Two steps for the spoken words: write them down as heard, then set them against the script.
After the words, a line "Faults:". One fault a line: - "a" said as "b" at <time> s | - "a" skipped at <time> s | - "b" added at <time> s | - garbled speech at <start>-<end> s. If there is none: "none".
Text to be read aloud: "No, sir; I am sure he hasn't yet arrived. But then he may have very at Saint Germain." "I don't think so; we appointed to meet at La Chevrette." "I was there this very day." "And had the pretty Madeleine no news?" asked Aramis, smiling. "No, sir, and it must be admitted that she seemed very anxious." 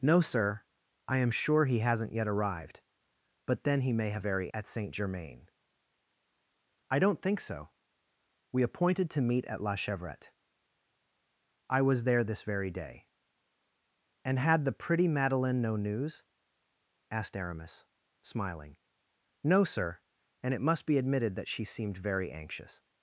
"No, sir; I am sure he hasn't yet arrived. But then he may have very at Saint Germain." "I don't think so; we appointed to meet at La Chevrette." "I was there this very day." "And had the pretty Madeleine no news?" asked Aramis, smiling. "No, sir, and it must be admitted that she seemed very anxious."
Faults:
none